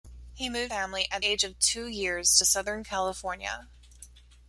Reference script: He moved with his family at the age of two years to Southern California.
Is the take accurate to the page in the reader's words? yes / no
no